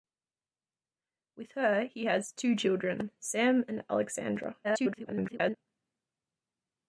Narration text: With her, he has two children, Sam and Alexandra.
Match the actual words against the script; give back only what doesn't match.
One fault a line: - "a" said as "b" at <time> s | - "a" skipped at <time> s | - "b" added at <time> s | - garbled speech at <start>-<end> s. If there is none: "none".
- garbled speech at 4.6-5.6 s